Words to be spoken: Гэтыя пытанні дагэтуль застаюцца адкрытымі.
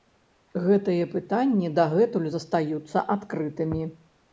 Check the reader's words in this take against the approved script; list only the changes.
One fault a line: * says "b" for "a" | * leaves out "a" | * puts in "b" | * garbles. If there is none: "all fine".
all fine